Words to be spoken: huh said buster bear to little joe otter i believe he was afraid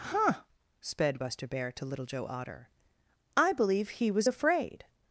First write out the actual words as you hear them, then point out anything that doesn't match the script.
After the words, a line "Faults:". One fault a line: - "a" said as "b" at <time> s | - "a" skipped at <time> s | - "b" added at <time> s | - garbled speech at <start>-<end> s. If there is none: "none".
huh sped buster bear to little joe otter i believe he was afraid
Faults:
- "said" said as "sped" at 0.8 s